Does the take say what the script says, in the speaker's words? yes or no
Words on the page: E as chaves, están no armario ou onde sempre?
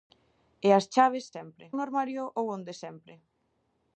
no